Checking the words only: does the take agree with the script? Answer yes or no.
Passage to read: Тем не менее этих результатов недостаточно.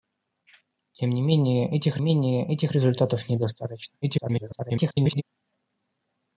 no